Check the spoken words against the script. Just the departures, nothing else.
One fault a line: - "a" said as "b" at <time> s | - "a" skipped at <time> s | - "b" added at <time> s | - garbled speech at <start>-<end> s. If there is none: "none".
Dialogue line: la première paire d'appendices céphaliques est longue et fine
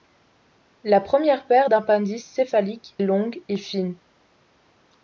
- "est" skipped at 3.0 s